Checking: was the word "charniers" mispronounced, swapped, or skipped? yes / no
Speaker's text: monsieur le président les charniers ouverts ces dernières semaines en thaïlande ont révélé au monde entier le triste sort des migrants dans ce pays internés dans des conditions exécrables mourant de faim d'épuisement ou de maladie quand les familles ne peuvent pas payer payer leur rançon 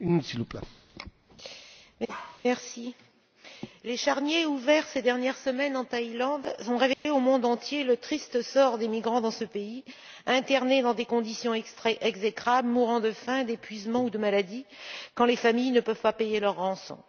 no